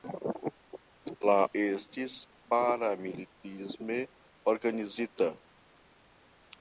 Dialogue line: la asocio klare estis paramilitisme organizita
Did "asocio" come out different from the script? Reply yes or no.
yes